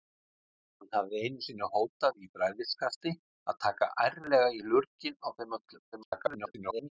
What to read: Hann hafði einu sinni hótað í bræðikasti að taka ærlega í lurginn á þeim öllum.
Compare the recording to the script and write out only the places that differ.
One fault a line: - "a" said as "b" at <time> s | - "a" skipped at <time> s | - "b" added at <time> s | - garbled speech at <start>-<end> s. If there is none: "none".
- garbled speech at 5.9-6.9 s